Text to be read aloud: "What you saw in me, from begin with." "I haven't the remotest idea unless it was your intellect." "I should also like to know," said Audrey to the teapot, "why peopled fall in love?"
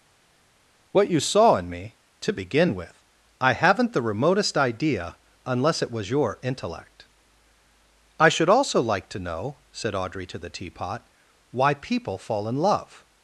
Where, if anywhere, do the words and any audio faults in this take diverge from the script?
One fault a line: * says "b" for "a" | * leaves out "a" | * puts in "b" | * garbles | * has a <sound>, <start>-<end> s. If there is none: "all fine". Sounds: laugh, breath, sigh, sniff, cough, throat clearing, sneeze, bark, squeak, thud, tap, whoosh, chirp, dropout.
* says "to" for "from"
* says "people" for "peopled"